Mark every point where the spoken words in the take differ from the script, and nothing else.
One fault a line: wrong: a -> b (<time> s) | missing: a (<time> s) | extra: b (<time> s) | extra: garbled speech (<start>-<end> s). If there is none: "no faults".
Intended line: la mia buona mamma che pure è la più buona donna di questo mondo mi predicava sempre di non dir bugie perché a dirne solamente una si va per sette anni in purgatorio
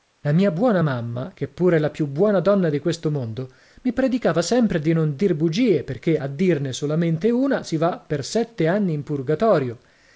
no faults